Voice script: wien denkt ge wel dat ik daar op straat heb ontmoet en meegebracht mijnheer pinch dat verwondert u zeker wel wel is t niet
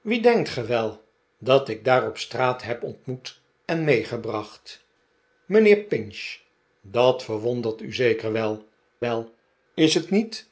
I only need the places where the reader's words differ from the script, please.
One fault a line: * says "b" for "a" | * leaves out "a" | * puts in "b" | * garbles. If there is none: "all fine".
all fine